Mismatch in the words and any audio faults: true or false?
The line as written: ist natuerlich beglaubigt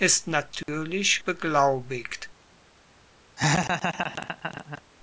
true